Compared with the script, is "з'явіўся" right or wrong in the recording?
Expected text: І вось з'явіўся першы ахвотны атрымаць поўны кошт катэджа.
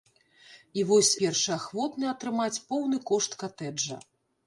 wrong